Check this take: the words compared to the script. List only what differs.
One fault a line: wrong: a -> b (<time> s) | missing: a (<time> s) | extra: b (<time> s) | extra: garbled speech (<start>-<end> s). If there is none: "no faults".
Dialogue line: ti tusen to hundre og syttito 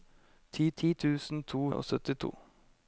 extra: ti (0.8 s)
missing: hundre (1.6 s)